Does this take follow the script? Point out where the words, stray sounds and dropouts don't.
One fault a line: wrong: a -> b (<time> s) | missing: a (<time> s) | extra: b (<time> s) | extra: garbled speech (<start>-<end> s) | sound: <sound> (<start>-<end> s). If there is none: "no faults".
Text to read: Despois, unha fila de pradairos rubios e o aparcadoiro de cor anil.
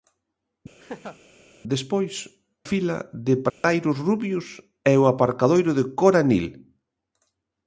sound: laugh (0.8-1.2 s)
missing: unha (2.1 s)
sound: dropout (3.5-3.6 s)